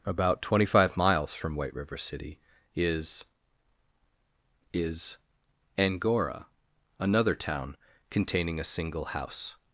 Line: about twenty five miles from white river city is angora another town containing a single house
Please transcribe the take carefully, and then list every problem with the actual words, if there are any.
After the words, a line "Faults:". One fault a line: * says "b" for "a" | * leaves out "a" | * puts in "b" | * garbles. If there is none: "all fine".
about twenty five miles from white river city is is angora another town containing a single house
Faults:
* puts in "is"